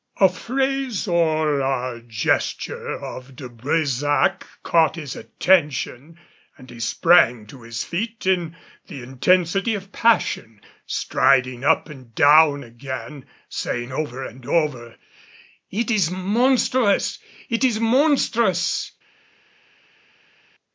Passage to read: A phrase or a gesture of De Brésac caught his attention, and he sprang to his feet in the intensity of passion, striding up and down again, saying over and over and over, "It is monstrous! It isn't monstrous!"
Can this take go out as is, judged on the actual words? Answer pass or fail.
fail